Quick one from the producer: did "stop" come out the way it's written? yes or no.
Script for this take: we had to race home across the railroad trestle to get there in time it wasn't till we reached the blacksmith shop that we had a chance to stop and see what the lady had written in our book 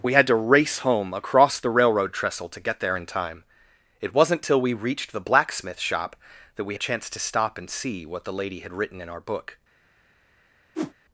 yes